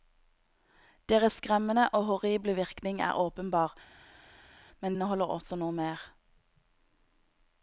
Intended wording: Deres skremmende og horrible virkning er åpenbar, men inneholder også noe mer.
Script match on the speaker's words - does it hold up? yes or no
yes